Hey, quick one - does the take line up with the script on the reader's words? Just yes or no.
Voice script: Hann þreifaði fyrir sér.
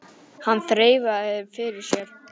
yes